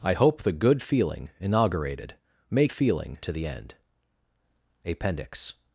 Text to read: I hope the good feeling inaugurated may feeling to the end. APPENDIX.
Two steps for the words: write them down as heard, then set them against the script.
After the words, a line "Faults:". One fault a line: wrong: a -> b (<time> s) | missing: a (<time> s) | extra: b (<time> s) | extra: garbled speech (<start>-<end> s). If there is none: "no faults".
I hope the good feeling inaugurated may feeling to the end. APPENDIX.
Faults:
no faults